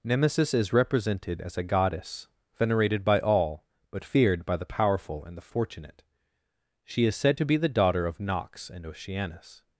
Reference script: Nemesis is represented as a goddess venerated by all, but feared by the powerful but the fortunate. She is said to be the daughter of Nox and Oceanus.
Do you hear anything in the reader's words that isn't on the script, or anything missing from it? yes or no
yes